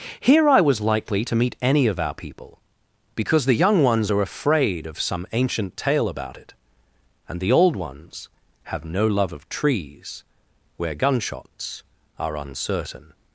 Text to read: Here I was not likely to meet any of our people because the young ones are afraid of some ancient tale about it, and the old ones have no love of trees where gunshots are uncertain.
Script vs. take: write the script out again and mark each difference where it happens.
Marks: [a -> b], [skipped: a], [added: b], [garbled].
Here I was [skipped: not] likely to meet any of our people because the young ones are afraid of some ancient tale about it, and the old ones have no love of trees where gunshots are uncertain.